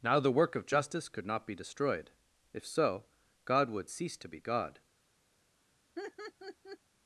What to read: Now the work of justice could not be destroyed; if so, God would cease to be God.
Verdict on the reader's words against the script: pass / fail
pass